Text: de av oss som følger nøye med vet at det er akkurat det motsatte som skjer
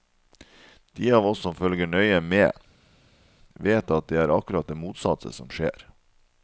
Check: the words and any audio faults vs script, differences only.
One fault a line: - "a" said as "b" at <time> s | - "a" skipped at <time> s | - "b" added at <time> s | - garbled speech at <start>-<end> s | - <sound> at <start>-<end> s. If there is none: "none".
none